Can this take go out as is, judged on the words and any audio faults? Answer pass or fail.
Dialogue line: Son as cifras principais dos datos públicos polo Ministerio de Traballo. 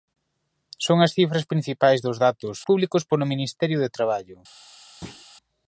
fail